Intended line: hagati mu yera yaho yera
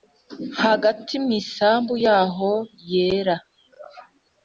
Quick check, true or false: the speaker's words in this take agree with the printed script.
false